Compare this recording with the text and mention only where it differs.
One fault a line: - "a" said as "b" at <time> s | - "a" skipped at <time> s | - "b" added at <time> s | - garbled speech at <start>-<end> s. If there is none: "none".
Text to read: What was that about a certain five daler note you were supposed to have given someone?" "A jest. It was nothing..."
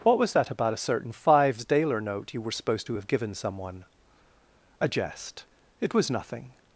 - "five" said as "fives" at 1.1 s